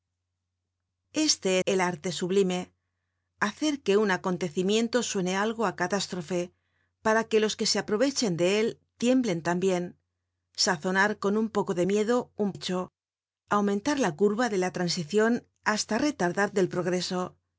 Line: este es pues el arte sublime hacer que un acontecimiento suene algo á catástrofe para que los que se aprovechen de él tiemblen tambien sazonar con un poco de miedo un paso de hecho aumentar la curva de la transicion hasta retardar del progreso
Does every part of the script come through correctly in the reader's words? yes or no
no